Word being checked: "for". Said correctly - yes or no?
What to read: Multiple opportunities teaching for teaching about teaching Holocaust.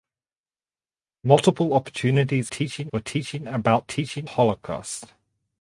yes